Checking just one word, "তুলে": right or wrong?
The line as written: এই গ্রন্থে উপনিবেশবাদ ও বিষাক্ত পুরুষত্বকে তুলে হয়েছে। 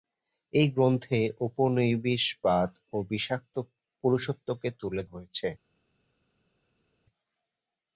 right